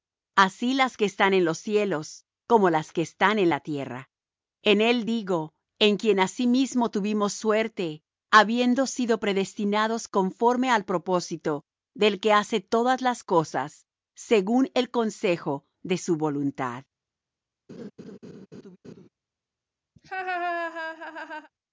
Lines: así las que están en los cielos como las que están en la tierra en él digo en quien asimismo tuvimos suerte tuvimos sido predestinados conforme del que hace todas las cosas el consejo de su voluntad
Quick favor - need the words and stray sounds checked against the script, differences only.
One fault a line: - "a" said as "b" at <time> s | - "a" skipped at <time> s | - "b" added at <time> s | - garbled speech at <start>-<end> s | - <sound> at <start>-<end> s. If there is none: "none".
- "tuvimos" said as "habiendo" at 8.3 s
- "al propósito" added at 10.7 s
- "según" added at 14.1 s
- laugh at 17.7-19.1 s
- laugh at 20.0-21.5 s